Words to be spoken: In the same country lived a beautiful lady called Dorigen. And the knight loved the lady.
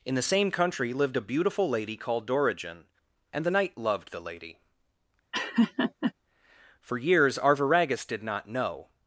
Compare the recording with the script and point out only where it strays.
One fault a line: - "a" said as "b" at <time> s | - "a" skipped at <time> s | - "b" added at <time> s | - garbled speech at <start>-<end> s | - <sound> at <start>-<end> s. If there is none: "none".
- laugh at 5.3-6.1 s
- "For years Arviragus did not know" added at 6.8 s